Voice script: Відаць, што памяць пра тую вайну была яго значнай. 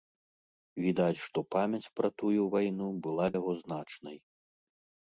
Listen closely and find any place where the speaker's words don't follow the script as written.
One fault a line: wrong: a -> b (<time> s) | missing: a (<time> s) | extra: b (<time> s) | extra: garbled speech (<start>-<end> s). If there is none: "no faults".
no faults